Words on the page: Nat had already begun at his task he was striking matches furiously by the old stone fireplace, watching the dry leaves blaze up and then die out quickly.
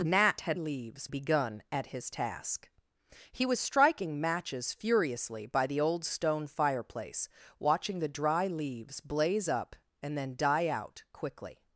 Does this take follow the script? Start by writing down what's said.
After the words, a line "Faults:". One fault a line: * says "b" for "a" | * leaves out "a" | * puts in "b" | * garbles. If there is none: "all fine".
Nat had leaves begun at his task he was striking matches furiously by the old stone fireplace, watching the dry leaves blaze up and then die out quickly.
Faults:
* says "leaves" for "already"